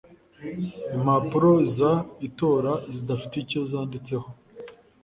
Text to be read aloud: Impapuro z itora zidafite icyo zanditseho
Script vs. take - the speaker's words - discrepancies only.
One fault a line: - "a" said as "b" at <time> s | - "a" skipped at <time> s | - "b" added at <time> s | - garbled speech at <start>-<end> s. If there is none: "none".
none